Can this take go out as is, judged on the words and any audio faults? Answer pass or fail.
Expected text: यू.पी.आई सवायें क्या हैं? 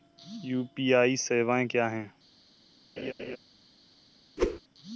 fail